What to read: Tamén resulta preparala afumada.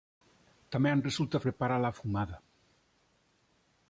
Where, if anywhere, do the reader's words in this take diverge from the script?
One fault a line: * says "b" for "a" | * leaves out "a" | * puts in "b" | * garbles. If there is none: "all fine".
all fine